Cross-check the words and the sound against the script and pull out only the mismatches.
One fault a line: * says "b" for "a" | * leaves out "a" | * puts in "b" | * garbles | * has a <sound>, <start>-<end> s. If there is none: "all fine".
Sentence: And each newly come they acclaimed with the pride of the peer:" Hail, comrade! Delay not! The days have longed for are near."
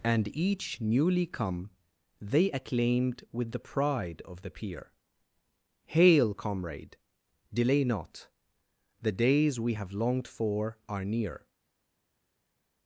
* puts in "we"